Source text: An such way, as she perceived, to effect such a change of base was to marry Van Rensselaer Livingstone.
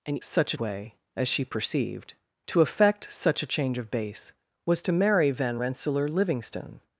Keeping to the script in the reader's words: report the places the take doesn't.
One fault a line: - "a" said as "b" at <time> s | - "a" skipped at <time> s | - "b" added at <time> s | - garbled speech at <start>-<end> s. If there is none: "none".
none